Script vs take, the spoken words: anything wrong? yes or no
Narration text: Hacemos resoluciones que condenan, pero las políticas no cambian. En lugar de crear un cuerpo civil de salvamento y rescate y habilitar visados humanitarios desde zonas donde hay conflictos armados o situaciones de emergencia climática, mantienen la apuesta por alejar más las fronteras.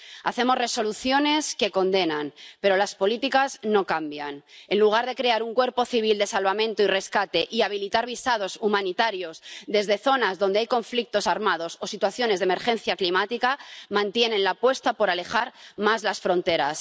no